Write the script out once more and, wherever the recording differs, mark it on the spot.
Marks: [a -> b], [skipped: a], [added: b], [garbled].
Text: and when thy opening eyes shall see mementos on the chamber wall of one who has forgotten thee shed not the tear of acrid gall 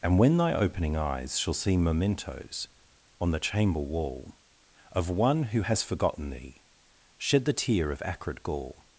and when thy opening eyes shall see mementos on the chamber wall of one who has forgotten thee shed [skipped: not] the tear of acrid gall